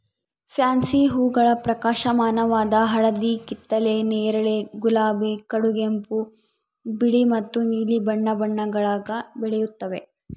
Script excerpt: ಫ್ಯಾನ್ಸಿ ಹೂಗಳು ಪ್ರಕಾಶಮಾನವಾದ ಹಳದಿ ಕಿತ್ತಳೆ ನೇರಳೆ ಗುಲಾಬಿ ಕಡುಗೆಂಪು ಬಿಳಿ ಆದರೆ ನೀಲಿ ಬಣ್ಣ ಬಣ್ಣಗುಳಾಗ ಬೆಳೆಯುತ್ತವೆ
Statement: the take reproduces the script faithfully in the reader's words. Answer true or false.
false